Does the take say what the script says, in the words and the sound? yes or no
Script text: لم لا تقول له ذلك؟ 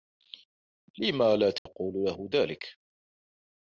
no